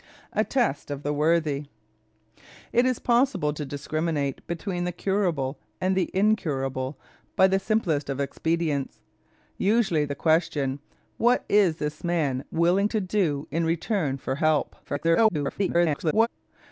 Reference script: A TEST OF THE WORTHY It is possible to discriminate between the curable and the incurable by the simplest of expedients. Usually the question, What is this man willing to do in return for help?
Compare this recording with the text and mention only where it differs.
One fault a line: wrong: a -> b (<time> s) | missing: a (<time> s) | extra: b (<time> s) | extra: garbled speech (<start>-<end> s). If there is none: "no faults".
extra: garbled speech (14.8-16.3 s)